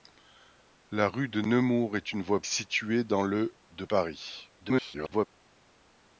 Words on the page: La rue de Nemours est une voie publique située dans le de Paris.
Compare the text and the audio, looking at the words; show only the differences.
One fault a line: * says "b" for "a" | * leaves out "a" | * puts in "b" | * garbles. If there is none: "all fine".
* leaves out "publique"
* garbles